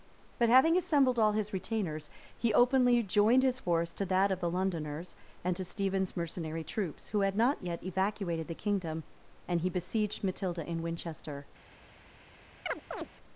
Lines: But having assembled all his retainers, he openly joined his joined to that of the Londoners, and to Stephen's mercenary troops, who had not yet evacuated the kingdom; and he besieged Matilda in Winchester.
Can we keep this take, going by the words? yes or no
no